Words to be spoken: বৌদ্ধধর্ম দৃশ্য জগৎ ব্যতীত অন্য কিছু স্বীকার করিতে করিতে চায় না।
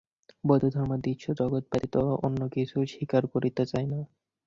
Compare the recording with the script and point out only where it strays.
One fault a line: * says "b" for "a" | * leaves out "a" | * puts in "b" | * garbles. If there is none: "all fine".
* leaves out "করিতে"